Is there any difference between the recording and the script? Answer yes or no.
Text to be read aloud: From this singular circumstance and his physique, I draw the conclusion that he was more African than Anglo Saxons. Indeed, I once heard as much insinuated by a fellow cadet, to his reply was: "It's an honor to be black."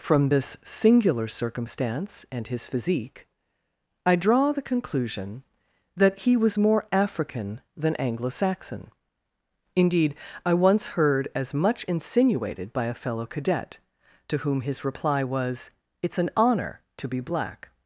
yes